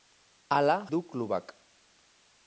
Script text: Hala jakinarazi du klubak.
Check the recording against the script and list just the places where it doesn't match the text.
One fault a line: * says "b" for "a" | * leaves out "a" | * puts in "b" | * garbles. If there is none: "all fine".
* leaves out "jakinarazi"